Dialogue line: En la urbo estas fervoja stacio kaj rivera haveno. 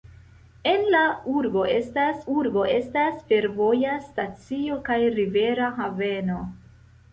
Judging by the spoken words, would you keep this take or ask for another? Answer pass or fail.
fail